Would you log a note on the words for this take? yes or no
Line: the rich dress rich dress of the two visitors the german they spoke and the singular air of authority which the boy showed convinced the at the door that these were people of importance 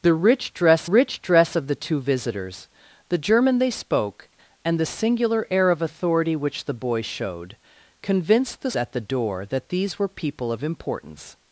no